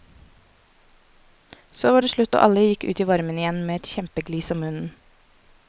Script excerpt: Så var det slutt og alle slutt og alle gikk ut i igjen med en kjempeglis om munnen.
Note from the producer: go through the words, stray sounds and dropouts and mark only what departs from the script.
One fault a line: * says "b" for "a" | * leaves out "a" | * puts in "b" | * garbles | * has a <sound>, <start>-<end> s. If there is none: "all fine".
* leaves out "slutt og alle"
* puts in "varmen"
* says "et" for "en"